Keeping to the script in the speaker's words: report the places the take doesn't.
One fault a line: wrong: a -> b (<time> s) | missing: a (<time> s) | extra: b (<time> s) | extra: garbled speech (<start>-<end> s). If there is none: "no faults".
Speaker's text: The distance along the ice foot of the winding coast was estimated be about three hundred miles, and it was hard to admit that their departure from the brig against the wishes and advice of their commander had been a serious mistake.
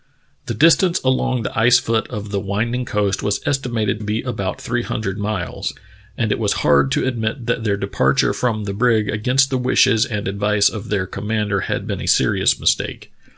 no faults